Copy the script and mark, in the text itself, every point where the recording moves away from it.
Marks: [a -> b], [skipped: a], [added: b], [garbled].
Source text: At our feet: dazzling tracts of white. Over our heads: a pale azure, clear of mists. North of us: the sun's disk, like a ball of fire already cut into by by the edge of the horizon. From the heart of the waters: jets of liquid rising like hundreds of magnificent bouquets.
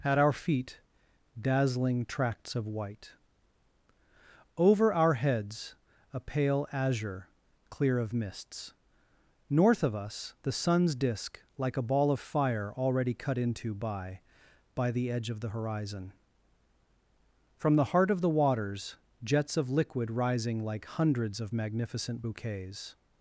At our feet: dazzling tracts of white. Over our heads: a pale azure, clear of mists. North of us: the sun's disk, like a ball of fire already cut into by by the edge of the horizon. From the heart of the waters: jets of liquid rising like hundreds of magnificent bouquets.